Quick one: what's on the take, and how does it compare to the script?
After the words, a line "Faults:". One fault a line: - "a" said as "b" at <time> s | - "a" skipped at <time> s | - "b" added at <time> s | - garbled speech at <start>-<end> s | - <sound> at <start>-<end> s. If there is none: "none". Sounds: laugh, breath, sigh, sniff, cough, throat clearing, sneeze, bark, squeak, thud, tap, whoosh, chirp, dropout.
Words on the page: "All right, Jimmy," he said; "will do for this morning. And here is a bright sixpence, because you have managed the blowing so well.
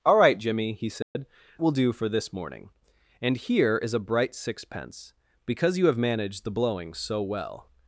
"All right, Jimmy," he said; "will do for this morning. And here is a bright sixpence, because you have managed the blowing so well.
Faults:
- dropout at 1.0-1.2 s